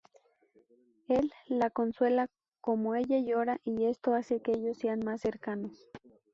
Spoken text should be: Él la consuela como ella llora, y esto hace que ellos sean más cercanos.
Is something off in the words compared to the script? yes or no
no